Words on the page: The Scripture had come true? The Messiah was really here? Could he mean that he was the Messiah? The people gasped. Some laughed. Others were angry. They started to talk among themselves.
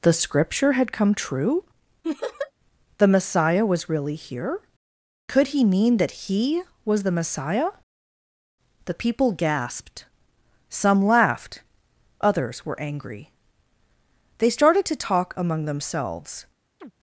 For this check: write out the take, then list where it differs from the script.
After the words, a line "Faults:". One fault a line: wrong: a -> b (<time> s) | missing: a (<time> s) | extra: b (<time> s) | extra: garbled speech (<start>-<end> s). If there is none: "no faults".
The Scripture had come true? The Messiah was really here? Could he mean that he was the Messiah? The people gasped. Some laughed. Others were angry. They started to talk among themselves.
Faults:
no faults